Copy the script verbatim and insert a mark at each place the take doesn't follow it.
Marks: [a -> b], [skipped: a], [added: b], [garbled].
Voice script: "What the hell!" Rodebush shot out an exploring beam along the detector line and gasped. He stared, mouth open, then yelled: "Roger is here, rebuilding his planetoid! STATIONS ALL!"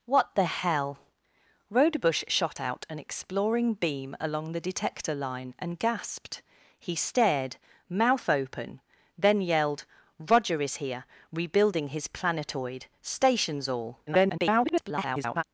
"What the hell!" Rodebush shot out an exploring beam along the detector line and gasped. He stared, mouth open, then yelled: "Roger is here, rebuilding his planetoid! STATIONS ALL!" [garbled]